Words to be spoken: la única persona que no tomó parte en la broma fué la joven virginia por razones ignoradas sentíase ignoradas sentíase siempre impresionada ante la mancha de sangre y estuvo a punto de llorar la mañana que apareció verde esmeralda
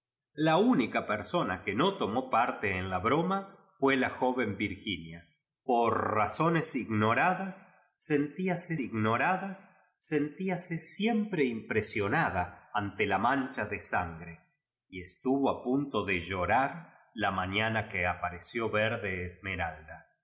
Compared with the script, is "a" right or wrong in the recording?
right